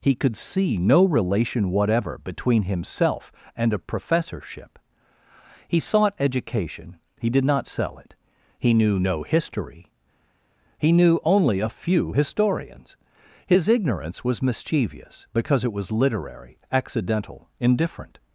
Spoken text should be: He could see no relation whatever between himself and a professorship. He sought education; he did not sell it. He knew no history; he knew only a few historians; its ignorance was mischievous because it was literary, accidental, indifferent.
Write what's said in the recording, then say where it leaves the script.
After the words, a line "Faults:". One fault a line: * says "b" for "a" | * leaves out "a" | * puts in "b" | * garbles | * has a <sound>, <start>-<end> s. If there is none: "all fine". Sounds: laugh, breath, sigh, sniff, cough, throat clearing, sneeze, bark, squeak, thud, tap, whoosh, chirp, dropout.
He could see no relation whatever between himself and a professorship. He sought education; he did not sell it. He knew no history; he knew only a few historians; his ignorance was mischievous because it was literary, accidental, indifferent.
Faults:
* says "his" for "its"